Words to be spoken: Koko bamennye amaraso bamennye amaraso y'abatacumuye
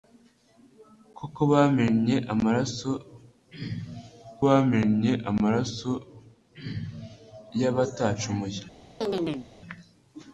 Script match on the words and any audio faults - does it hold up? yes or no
no